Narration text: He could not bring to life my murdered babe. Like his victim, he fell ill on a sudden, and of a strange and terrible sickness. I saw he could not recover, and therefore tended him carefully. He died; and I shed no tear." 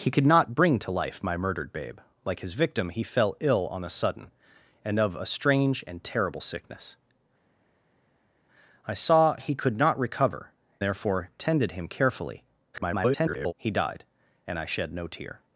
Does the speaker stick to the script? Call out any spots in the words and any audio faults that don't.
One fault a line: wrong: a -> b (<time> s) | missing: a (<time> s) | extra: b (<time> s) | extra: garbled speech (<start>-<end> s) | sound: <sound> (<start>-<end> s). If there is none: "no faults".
missing: and (10.5 s)
extra: garbled speech (12.7-13.5 s)